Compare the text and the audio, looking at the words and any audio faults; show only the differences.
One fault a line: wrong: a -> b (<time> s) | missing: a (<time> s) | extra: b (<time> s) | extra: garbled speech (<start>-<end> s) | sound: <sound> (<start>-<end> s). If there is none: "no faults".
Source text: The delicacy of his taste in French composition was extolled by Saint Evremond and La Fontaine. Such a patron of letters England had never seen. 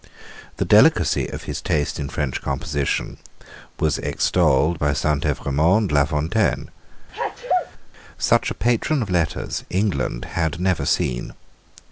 missing: and (5.9 s)
sound: sneeze (7.1-7.7 s)